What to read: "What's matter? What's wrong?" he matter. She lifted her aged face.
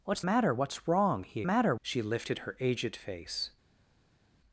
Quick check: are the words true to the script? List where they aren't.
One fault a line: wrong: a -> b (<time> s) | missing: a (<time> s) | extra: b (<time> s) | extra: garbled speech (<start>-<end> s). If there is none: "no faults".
no faults